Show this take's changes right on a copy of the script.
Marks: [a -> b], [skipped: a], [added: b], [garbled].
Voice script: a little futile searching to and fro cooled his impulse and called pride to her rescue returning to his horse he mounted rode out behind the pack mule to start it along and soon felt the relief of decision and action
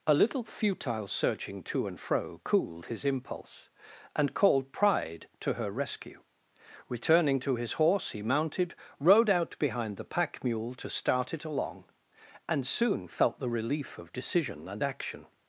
a little futile searching to and fro cooled his impulse and called pride to her rescue returning to his horse he mounted rode out behind the pack mule to start it along and soon felt the relief of decision and action